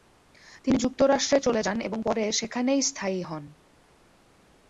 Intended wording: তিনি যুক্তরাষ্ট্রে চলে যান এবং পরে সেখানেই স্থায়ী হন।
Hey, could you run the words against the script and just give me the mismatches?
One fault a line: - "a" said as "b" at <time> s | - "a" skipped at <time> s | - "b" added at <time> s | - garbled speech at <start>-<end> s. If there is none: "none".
none